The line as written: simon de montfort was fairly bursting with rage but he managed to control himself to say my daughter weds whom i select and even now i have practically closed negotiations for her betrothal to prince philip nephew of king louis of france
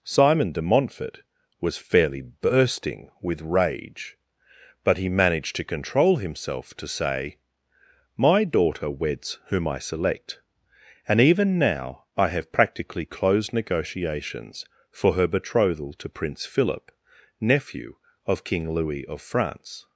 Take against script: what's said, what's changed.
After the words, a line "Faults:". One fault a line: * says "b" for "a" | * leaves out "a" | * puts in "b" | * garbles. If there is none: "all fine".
simon de montfort was fairly bursting with rage but he managed to control himself to say my daughter weds whom i select and even now i have practically closed negotiations for her betrothal to prince philip nephew of king louis of france
Faults:
all fine